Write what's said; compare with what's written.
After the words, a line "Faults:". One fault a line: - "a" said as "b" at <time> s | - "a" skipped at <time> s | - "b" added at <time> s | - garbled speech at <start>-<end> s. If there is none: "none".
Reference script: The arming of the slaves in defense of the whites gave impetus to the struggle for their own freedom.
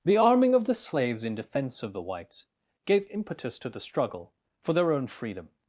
The arming of the slaves in defense of the whites gave impetus to the struggle for their own freedom.
Faults:
none